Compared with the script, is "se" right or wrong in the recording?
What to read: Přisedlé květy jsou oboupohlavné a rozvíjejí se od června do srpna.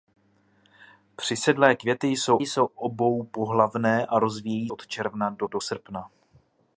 wrong